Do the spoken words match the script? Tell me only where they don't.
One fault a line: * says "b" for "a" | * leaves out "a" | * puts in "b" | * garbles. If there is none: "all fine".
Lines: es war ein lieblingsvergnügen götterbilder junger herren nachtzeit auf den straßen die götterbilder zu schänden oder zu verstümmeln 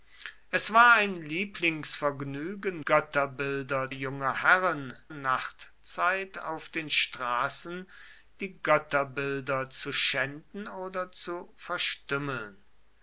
all fine